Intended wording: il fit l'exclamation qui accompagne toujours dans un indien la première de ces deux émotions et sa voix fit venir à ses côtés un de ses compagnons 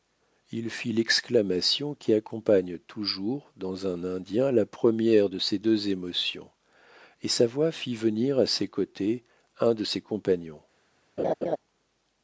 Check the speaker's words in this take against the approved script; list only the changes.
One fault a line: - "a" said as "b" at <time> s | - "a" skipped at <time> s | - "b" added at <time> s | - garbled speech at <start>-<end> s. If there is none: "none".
none